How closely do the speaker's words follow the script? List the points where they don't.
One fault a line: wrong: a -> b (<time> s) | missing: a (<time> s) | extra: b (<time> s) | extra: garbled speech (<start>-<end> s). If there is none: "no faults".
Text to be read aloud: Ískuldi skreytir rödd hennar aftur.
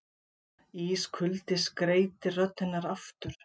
no faults